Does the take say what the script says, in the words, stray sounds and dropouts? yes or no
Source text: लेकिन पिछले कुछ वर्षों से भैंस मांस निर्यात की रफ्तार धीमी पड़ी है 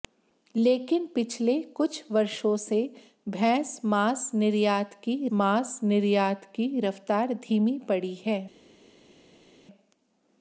no